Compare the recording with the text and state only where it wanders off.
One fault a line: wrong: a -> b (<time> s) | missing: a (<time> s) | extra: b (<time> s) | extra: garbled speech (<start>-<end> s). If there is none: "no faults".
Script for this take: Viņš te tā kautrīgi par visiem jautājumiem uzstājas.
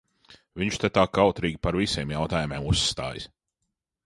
no faults